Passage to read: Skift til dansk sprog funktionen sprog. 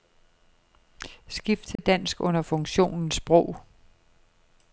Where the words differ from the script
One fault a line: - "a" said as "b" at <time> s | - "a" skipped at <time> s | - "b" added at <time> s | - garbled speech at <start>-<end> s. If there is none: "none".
- "sprog" said as "under" at 2.2 s